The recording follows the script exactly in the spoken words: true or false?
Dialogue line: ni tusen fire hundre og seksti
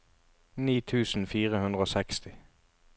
true